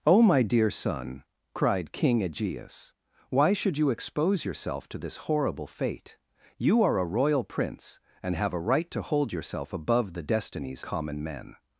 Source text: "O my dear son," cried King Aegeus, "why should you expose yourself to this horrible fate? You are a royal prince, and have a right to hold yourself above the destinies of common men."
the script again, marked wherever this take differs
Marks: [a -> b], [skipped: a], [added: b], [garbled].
"O my dear son," cried King Aegeus, "why should you expose yourself to this horrible fate? You are a royal prince, and have a right to hold yourself above the destinies [skipped: of] common men."